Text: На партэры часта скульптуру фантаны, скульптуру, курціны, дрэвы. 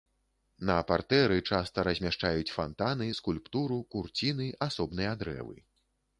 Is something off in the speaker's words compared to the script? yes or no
yes